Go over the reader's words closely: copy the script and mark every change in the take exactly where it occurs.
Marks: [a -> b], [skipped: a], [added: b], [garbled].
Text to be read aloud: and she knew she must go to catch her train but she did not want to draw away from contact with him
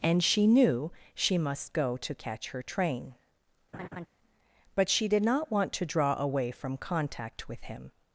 and she knew she must go to catch her train but she did not want to draw away from contact with him